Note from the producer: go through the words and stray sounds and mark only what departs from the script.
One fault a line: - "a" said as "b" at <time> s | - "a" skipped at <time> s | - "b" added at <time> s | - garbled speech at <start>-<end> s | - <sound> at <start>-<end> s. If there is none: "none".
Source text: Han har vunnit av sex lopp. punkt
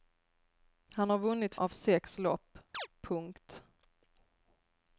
- chirp at 2.7-2.9 s